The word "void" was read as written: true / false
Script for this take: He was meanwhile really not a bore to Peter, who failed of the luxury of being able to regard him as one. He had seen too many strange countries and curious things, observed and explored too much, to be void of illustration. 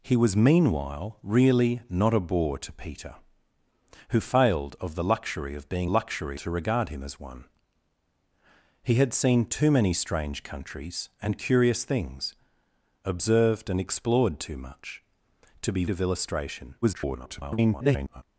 false